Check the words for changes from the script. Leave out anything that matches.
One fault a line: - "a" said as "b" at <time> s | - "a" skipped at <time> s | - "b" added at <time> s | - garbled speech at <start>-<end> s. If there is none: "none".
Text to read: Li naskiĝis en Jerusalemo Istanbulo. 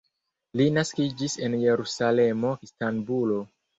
none